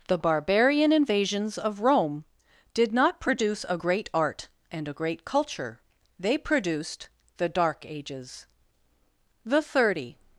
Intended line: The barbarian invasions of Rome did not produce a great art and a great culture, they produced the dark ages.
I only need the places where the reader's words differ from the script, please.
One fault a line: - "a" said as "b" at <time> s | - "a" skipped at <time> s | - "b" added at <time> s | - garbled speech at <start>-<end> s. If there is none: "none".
- "The Thirty" added at 9.4 s